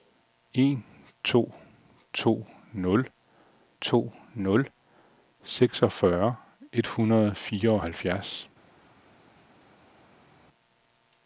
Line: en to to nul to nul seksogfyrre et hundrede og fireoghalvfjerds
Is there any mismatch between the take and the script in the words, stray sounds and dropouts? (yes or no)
no